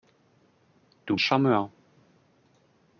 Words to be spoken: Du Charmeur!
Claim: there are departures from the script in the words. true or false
false